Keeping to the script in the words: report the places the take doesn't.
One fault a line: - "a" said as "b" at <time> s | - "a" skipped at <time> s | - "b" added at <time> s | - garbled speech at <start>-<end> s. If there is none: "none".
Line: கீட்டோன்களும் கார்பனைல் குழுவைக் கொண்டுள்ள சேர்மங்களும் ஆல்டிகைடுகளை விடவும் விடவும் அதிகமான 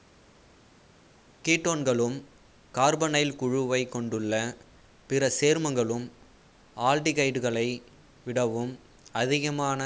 - "பிற" added at 5.1 s
- "விடவும்" skipped at 8.7 s